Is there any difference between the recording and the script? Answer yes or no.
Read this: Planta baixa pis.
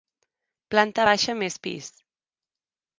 yes